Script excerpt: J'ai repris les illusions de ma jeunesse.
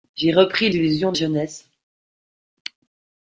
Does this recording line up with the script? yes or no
no